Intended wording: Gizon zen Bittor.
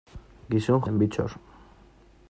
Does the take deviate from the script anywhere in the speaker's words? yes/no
no